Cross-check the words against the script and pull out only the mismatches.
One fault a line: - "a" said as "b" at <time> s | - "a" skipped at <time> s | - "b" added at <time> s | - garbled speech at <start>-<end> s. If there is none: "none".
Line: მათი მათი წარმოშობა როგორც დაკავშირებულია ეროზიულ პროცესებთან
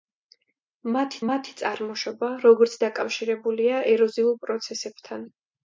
none